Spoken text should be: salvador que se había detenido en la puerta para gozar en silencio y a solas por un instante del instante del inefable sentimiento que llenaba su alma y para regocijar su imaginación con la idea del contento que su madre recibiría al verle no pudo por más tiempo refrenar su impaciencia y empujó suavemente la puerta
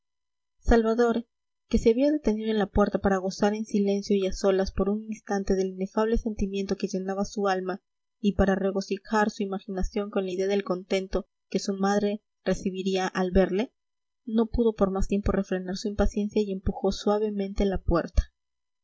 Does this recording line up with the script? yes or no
no